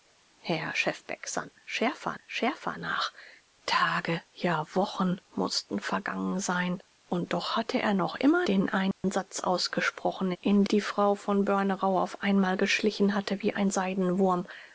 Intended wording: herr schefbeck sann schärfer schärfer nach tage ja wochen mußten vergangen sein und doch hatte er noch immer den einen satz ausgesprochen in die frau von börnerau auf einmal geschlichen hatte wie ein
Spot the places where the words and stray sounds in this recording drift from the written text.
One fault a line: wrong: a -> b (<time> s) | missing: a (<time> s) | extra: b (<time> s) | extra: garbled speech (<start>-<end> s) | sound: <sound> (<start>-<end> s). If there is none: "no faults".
sound: dropout (8.9-9.0 s)